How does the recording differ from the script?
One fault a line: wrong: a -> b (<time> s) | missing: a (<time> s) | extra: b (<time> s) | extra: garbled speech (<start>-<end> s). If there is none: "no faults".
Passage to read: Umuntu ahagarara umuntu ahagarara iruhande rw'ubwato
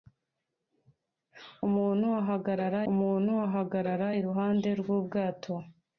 no faults